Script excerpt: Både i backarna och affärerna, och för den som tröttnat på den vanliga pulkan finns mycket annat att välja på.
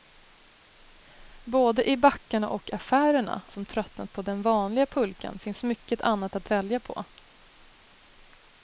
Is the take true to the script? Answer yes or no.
no